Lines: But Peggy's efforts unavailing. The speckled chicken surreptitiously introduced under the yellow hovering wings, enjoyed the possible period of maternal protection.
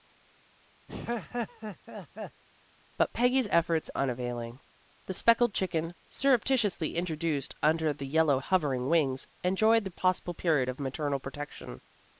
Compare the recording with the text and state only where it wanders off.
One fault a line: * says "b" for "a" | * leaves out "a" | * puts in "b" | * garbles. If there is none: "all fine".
all fine